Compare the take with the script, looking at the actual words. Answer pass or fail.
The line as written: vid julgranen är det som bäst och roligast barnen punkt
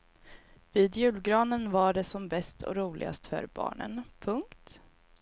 fail